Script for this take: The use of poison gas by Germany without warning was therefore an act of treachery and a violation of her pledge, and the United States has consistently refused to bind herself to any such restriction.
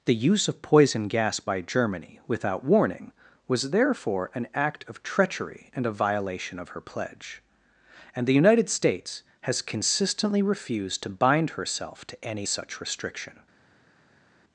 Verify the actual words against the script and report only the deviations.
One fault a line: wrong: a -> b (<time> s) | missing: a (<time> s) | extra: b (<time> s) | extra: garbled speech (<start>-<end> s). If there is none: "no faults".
no faults